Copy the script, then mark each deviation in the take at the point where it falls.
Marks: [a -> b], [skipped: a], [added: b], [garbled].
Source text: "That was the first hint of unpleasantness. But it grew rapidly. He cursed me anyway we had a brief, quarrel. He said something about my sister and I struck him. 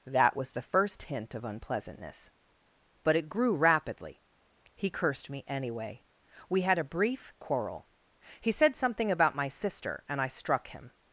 "That was the first hint of unpleasantness. But it grew rapidly. He cursed me anyway we had a brief, quarrel. He said something about my sister and I struck him.